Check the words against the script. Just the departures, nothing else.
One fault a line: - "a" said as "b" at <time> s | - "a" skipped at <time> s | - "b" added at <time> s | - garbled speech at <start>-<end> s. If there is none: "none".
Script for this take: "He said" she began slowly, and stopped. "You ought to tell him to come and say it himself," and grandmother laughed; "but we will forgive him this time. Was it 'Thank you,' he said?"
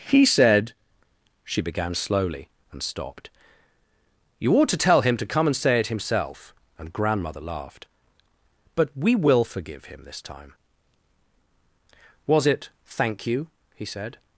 none